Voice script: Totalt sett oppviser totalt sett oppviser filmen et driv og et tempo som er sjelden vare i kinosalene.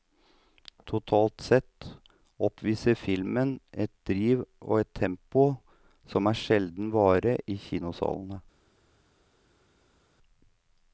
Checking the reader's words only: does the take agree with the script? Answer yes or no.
no